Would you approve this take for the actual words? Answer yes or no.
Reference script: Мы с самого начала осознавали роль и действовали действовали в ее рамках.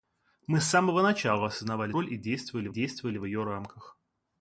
yes